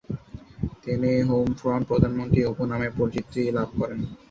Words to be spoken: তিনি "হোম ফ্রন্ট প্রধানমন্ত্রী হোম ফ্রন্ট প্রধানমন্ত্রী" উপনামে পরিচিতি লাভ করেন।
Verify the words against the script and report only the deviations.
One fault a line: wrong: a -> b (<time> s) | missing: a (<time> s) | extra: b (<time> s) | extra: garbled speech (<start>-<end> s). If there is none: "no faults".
missing: হোম ফ্রন্ট প্রধানমন্ত্রী (2.4 s)